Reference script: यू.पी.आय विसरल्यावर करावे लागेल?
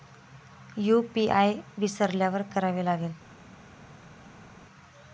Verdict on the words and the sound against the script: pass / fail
pass